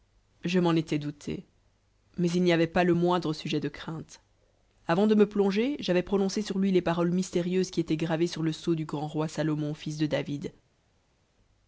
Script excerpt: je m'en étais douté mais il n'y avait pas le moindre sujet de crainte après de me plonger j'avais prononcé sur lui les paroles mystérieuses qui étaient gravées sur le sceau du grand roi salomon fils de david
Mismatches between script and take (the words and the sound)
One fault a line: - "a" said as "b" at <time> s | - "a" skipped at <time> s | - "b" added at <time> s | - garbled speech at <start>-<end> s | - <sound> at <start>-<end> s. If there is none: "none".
- "après" said as "avant" at 4.9 s